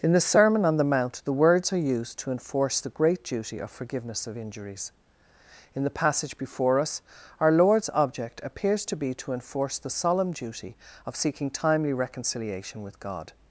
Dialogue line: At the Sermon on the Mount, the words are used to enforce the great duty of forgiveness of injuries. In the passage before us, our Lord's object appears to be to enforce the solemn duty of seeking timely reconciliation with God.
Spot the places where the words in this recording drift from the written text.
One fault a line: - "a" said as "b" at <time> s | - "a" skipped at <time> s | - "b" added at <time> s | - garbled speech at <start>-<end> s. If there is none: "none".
- "At" said as "In" at 0.0 s